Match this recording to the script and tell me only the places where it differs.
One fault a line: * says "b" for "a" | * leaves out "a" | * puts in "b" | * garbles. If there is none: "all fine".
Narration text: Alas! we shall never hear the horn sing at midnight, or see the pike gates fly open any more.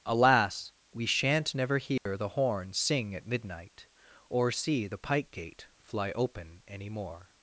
* says "shan't" for "shall"
* says "gate" for "gates"